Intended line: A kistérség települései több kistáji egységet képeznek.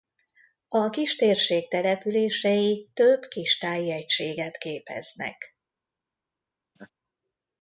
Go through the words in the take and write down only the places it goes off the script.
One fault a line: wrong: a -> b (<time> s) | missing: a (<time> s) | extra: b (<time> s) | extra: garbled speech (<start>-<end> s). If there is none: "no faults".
no faults